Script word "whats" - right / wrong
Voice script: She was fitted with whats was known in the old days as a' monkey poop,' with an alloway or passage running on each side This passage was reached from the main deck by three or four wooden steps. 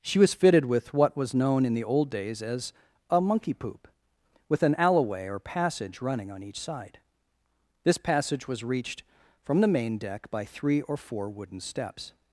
wrong